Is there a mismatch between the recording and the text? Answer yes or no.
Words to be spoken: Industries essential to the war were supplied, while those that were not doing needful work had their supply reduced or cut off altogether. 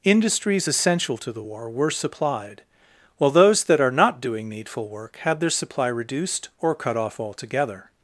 yes